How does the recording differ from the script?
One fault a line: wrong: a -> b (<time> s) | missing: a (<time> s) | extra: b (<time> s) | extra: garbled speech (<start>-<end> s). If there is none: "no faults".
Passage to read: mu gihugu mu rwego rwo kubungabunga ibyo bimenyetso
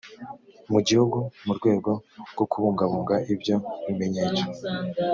no faults